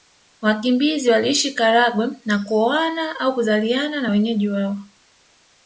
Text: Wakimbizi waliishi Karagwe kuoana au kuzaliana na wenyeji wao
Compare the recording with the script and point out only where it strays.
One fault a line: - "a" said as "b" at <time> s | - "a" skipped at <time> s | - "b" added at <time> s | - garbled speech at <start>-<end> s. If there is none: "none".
- "na" added at 2.3 s